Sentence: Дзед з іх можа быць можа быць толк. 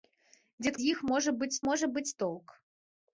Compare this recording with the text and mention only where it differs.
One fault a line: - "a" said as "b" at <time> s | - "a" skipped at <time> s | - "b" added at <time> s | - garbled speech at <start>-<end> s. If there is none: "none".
none